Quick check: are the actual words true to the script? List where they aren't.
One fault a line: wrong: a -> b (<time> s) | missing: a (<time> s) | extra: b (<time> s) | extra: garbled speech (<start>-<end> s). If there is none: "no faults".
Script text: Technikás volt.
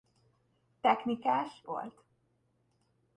no faults